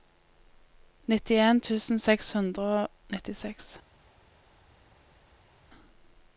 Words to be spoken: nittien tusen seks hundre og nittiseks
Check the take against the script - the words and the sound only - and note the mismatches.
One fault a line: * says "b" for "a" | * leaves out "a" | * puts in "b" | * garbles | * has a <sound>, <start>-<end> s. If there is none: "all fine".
all fine